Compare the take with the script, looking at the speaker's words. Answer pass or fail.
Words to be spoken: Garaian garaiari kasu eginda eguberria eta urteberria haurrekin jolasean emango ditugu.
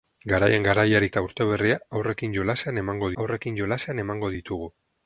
fail